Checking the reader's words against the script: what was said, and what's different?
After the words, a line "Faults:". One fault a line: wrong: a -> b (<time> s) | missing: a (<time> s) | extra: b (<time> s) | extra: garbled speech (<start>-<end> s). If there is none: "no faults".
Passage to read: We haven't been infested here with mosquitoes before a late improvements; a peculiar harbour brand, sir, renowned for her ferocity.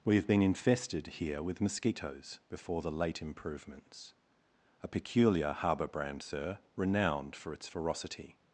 We have been infested here with mosquitoes before the late improvements; a peculiar harbour brand, sir, renowned for its ferocity.
Faults:
wrong: haven't -> have (0.1 s)
wrong: a -> the (2.8 s)
wrong: her -> its (7.5 s)